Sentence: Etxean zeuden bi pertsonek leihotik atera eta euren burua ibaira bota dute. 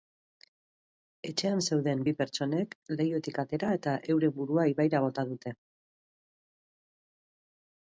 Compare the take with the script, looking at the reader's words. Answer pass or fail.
pass